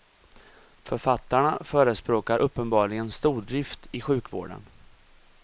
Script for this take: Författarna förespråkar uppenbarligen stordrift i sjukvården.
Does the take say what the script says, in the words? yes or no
yes